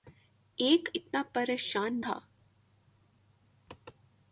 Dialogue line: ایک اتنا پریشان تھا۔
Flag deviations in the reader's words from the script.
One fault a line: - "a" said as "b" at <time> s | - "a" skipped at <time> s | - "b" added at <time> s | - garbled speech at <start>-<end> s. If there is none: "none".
none